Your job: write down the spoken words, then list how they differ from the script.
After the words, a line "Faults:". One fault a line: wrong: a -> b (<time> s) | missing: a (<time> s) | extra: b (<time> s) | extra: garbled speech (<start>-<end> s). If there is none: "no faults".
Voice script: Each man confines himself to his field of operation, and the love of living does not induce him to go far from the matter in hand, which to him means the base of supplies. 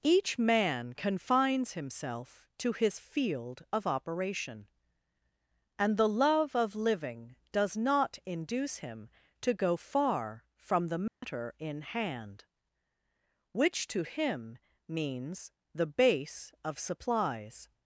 Each man confines himself to his field of operation, and the love of living does not induce him to go far from the matter in hand, which to him means the base of supplies.
Faults:
no faults